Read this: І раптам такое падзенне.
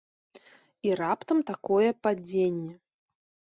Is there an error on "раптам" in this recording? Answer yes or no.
no